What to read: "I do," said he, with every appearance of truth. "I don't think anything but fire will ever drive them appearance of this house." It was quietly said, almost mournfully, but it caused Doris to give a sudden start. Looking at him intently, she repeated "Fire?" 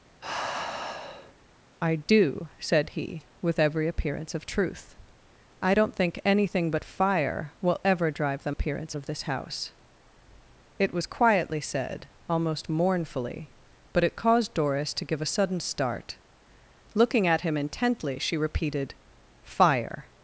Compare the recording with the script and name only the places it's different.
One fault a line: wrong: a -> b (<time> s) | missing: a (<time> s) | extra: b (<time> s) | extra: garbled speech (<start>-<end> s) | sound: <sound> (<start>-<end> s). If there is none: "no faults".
sound: sigh (0.2-1.3 s)